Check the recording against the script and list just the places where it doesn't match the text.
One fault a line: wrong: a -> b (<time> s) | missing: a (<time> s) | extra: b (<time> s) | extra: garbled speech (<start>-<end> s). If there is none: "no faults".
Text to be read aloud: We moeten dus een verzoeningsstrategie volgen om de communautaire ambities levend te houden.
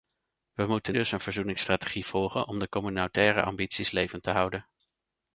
no faults